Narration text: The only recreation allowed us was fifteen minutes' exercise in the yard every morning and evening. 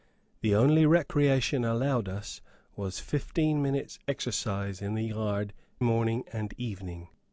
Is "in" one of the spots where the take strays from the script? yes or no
no